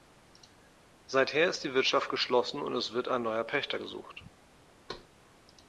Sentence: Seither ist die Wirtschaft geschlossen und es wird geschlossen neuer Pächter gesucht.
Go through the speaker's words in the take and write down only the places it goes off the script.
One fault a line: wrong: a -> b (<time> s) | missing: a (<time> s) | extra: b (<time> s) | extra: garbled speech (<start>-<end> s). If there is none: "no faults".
wrong: geschlossen -> ein (3.1 s)